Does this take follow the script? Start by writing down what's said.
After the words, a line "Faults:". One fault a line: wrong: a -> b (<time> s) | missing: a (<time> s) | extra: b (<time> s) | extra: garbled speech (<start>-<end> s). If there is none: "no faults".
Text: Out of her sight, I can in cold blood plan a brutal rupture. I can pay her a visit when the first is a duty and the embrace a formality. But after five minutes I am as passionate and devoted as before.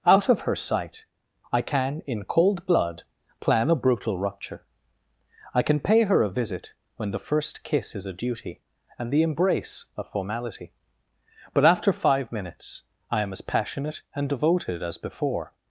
Out of her sight, I can in cold blood plan a brutal rupture. I can pay her a visit when the first kiss is a duty and the embrace a formality. But after five minutes I am as passionate and devoted as before.
Faults:
extra: kiss (7.6 s)